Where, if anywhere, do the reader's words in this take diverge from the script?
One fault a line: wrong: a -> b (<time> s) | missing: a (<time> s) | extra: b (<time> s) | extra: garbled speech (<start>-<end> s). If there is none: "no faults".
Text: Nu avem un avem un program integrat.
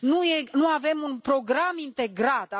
missing: avem un (1.2 s)